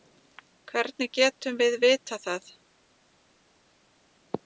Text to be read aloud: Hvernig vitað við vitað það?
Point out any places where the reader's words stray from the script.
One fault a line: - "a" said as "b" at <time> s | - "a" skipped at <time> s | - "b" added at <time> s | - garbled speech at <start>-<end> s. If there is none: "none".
- "vitað" said as "getum" at 1.2 s